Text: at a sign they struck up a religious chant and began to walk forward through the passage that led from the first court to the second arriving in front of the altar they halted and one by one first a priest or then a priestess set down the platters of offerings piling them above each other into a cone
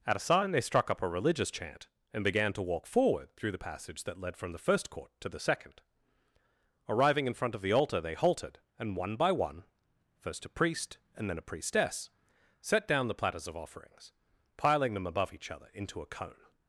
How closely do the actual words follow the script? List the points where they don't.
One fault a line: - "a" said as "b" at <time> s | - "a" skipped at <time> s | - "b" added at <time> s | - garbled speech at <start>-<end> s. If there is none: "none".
- "or" said as "and" at 11.2 s